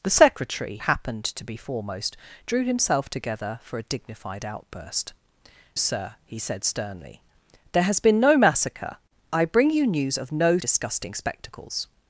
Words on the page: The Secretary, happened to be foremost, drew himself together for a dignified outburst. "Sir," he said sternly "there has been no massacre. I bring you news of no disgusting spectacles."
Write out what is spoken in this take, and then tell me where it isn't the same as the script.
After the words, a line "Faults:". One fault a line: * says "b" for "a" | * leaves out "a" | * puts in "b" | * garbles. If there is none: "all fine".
The Secretary, happened to be foremost, drew himself together for a dignified outburst. "Sir," he said sternly "there has been no massacre. I bring you news of no disgusting spectacles."
Faults:
all fine